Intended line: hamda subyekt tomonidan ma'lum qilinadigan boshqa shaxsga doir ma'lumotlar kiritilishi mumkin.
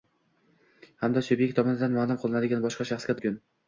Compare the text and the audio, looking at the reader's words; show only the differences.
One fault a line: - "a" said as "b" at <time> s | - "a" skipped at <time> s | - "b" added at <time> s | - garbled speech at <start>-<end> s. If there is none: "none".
- "doir ma'lumotlar kiritilishi" skipped at 3.2 s